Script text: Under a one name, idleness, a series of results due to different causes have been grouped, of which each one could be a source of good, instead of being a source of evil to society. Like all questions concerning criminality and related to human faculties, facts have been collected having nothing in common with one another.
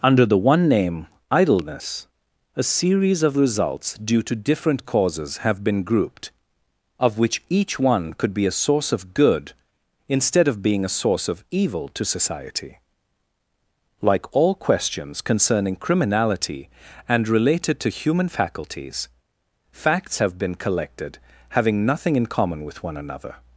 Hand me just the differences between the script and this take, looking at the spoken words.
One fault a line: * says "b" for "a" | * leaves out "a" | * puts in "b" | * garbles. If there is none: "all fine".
* says "the" for "a"